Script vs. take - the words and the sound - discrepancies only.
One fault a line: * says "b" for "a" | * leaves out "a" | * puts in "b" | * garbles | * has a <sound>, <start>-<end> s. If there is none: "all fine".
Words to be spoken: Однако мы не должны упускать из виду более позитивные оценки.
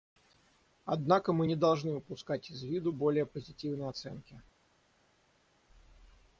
all fine